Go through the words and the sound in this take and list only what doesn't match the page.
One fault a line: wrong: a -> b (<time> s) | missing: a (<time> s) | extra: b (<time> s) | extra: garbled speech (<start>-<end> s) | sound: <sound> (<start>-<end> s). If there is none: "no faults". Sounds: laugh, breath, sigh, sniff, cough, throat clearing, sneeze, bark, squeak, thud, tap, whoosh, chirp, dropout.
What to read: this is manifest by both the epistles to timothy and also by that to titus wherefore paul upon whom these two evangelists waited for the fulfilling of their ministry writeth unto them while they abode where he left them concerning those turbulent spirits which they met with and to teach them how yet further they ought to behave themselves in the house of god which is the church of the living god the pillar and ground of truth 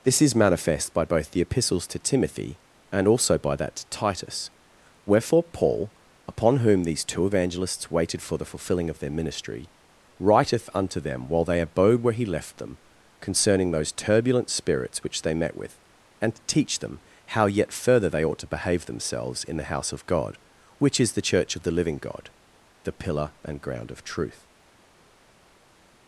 no faults